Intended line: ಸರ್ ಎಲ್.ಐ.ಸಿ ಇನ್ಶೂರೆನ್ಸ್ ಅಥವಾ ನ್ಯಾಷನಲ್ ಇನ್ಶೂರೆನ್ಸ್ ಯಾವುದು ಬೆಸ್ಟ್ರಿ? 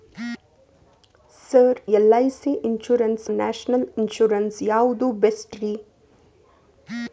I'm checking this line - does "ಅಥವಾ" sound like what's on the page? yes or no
no